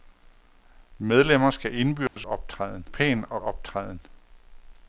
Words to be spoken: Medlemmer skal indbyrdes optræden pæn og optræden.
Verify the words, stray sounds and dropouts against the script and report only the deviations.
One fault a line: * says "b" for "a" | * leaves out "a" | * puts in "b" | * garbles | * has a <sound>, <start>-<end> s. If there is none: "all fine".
* has a dropout, 2.1-2.2 s